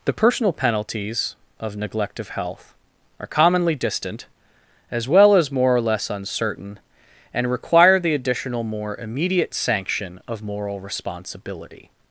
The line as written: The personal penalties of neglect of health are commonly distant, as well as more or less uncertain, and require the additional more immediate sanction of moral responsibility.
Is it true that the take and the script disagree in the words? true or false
false